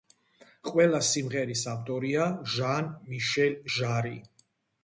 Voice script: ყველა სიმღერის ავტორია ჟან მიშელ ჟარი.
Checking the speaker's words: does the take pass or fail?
pass